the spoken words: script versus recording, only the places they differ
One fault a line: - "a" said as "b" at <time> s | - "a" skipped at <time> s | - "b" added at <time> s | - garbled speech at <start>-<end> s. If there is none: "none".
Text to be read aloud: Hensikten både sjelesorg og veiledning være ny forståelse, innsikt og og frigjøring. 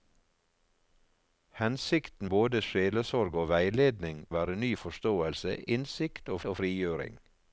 none